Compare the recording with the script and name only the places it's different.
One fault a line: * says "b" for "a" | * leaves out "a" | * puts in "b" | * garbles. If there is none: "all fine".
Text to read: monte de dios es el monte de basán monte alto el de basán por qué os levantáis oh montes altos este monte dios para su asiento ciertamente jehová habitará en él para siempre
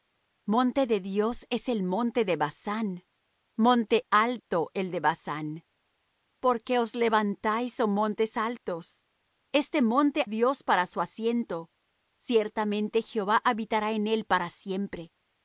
all fine